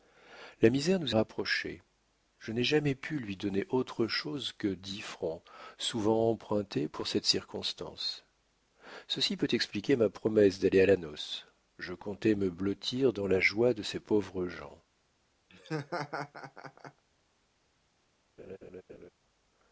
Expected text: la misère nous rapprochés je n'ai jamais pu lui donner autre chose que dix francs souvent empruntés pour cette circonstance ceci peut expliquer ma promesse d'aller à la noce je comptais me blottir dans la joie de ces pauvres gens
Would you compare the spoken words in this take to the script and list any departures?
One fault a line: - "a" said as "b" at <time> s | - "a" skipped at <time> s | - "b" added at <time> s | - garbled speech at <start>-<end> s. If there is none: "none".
none